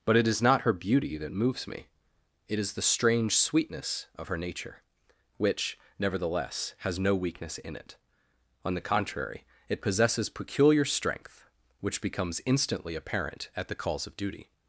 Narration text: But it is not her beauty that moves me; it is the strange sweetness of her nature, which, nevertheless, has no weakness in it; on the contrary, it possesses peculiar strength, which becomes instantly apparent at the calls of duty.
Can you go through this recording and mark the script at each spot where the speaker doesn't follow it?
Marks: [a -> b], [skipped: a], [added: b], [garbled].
But it is not her beauty that moves me; it is the strange sweetness of her nature, which, nevertheless, has no weakness in it; on the contrary, it possesses peculiar strength, which becomes instantly apparent at the calls of duty.